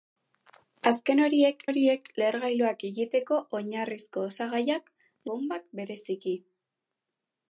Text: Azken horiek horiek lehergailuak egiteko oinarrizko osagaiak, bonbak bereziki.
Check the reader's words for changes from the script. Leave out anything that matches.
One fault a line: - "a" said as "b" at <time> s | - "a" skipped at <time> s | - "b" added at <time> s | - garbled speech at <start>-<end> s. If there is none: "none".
none